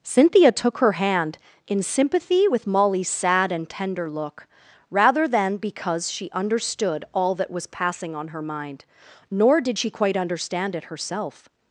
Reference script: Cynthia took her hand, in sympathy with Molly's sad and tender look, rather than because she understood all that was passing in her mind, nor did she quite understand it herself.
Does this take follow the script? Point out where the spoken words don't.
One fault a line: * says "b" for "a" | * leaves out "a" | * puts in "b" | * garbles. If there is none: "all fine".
* says "on" for "in"